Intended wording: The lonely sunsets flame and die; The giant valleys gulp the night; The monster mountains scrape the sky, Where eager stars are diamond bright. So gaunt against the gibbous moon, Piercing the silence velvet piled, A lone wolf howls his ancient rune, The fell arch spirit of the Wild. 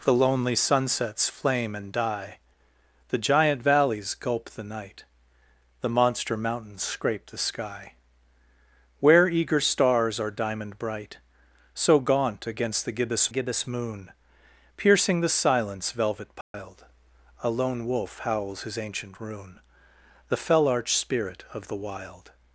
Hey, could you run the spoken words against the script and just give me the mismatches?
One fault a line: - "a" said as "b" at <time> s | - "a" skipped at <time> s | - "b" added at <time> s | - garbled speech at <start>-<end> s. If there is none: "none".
- "gibbous" added at 13.3 s